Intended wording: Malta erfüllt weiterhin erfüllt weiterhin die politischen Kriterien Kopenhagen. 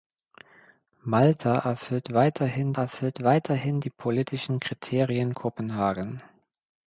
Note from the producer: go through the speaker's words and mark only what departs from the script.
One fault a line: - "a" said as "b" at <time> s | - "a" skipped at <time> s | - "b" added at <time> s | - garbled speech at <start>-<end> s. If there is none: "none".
none